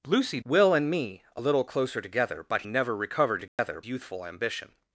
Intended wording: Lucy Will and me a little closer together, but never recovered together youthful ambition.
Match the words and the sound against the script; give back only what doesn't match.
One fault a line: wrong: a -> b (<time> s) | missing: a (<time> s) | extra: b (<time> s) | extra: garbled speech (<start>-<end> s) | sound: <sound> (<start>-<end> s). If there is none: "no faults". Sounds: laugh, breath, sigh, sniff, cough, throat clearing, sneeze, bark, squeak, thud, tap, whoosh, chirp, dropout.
sound: dropout (3.5-3.6 s)